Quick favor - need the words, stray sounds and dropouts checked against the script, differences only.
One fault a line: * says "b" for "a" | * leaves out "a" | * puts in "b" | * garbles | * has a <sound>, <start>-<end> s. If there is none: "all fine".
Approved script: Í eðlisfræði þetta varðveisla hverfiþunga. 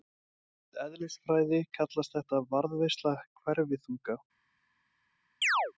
* puts in "kallast"
* has a chirp, 5.4-5.7 s